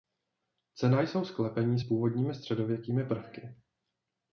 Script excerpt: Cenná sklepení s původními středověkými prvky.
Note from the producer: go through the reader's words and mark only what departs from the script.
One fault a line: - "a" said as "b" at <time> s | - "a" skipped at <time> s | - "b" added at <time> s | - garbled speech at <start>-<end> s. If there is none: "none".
- "jsou" added at 1.0 s